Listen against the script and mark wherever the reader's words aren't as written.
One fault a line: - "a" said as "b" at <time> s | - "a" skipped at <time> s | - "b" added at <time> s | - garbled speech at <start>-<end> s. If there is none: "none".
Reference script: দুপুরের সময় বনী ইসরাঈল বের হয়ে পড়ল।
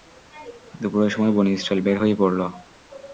none